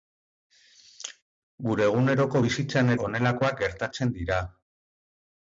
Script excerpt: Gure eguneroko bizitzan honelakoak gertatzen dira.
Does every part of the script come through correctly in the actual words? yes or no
yes